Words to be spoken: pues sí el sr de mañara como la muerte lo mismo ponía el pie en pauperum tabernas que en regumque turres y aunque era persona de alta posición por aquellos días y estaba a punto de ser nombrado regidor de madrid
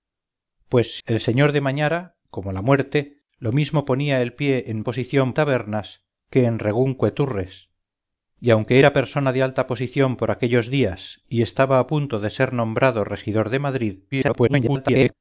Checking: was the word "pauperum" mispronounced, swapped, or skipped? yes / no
yes